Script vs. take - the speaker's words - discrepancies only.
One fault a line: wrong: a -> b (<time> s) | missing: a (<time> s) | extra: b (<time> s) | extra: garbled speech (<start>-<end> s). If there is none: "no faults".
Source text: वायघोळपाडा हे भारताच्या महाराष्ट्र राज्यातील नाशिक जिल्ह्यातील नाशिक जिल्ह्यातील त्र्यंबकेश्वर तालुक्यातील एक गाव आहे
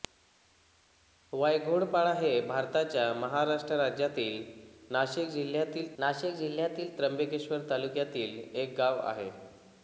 no faults